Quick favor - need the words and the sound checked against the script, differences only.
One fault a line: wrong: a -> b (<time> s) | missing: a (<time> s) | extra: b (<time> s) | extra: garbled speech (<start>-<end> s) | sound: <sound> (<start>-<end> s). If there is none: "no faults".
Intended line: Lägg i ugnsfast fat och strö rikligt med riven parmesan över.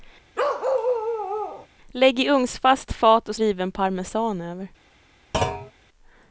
sound: bark (0.4-1.7 s)
missing: strö rikligt med (3.3 s)
sound: thud (5.3-5.7 s)